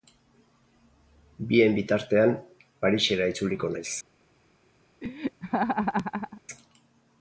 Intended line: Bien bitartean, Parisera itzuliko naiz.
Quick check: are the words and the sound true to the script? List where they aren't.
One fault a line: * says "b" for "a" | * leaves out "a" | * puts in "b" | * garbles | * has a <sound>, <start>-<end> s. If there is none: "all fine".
* has a laugh, 5.0-6.4 s